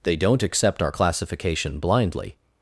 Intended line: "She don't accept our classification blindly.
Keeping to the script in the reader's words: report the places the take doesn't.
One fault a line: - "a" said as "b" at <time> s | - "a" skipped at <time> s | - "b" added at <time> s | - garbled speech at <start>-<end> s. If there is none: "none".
- "She" said as "They" at 0.0 s